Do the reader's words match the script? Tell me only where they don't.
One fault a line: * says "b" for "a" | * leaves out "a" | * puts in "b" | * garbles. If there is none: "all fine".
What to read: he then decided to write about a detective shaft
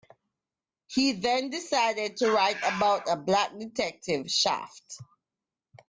* puts in "black"